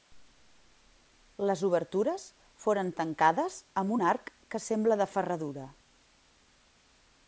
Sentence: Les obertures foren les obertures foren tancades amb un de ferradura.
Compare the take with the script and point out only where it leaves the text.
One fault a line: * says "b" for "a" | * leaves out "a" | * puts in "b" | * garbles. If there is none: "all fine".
* says "tancades amb un arc que sembla" for "les obertures foren tancades amb un"